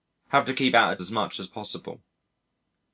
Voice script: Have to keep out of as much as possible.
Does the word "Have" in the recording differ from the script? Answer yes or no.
no